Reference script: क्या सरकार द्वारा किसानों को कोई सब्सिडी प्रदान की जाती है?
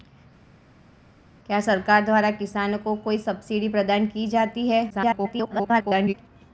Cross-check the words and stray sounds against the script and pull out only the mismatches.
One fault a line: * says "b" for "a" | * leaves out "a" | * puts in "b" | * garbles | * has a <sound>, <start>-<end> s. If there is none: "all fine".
* garbles